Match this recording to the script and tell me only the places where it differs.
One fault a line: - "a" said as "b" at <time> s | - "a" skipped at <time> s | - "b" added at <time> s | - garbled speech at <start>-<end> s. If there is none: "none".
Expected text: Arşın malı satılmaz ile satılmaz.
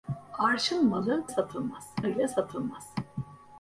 none